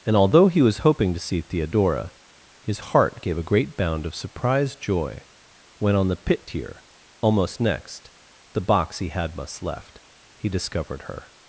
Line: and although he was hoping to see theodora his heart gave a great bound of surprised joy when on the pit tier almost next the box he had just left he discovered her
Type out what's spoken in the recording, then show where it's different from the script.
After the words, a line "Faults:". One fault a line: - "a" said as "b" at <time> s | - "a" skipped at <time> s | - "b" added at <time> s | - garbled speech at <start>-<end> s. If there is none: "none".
and although he was hoping to see theodora his heart gave a great bound of surprised joy when on the pit tier almost next the box he had must left he discovered her
Faults:
- "just" said as "must" at 9.3 s